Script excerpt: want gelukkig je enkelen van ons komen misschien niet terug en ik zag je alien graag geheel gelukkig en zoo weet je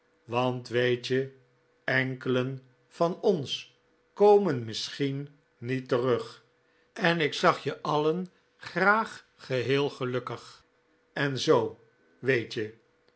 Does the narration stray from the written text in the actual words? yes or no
yes